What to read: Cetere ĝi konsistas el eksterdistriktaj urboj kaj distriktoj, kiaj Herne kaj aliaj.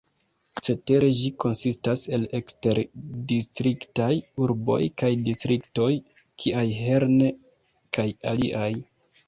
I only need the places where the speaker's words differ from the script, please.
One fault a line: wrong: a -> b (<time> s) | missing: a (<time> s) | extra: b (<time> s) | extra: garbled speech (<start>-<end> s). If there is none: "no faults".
no faults